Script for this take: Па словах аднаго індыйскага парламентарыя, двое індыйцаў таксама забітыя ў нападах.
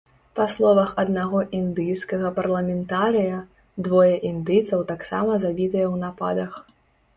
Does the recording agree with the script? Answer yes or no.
yes